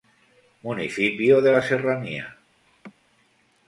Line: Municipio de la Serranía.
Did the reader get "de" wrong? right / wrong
right